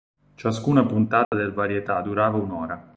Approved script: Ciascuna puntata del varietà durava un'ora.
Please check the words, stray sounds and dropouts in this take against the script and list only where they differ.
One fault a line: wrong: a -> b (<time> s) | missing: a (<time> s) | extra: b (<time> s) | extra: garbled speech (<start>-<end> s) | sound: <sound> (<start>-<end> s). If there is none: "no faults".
sound: dropout (1.2-1.3 s)